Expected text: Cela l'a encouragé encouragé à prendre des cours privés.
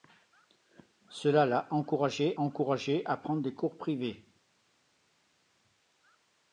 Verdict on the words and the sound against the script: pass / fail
pass